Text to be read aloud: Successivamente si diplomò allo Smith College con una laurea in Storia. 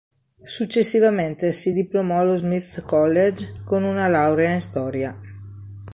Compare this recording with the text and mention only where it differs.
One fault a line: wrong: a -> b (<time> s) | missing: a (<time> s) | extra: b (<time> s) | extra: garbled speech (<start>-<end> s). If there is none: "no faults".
no faults